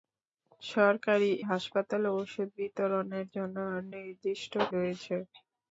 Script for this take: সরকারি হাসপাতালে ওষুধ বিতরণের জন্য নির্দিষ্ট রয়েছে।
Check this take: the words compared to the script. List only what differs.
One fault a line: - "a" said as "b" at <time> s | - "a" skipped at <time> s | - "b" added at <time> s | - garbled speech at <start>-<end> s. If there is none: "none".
none